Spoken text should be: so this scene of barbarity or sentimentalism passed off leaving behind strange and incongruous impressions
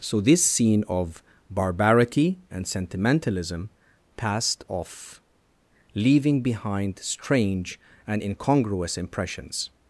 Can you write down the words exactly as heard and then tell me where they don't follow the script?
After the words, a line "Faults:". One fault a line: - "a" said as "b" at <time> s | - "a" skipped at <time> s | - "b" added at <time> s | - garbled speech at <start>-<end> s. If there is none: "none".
so this scene of barbarity and sentimentalism passed off leaving behind strange and incongruous impressions
Faults:
- "or" said as "and" at 2.5 s